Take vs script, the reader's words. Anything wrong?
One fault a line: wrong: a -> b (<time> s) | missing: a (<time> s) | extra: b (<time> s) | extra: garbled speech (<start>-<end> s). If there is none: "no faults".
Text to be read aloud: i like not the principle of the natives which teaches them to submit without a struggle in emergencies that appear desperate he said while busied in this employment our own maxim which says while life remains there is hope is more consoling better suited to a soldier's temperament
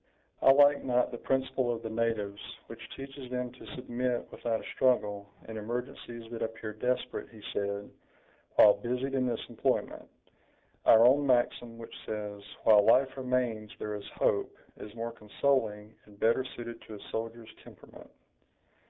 extra: and (16.0 s)